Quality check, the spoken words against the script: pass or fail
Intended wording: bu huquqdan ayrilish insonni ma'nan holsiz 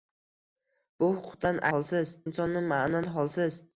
fail